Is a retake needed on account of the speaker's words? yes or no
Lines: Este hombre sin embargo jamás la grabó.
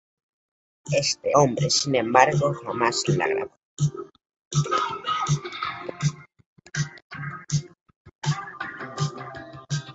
no